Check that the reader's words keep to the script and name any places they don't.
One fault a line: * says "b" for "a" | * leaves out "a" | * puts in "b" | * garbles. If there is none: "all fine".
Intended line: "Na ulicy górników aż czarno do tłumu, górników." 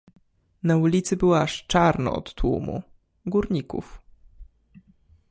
* says "było" for "górników"
* says "od" for "do"